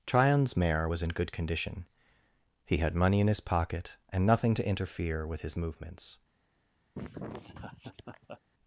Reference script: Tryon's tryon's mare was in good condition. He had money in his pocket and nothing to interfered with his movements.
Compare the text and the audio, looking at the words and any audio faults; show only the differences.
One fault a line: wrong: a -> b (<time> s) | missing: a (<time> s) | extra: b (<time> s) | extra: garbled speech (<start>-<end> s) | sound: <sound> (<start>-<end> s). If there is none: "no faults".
missing: tryon's (0.6 s)
wrong: interfered -> interfere (4.7 s)
sound: laugh (6.9-8.4 s)